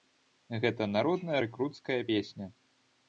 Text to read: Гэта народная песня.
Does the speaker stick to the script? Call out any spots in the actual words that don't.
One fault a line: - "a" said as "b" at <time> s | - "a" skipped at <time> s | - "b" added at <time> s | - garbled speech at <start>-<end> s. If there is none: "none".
- "рэкруцкая" added at 1.4 s